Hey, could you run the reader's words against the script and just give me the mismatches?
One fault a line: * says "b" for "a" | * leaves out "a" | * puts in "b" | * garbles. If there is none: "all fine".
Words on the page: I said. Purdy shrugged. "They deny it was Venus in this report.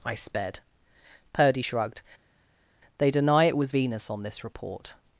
* says "sped" for "said"
* says "on" for "in"